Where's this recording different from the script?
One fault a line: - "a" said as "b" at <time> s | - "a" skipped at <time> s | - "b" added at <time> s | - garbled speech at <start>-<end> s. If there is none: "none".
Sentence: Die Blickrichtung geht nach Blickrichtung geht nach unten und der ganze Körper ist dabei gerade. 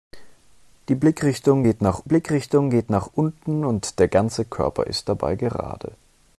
none